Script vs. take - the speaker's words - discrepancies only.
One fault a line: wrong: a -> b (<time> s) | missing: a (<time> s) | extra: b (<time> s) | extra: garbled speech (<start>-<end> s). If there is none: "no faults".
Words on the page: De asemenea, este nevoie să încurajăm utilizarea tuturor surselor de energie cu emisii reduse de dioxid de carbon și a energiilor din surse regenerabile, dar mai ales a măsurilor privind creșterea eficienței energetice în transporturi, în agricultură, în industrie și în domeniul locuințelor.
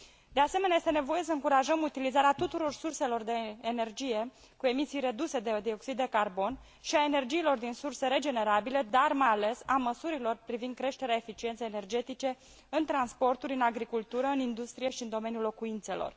no faults